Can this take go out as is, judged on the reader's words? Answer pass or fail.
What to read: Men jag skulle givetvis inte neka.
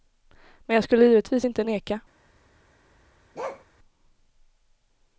pass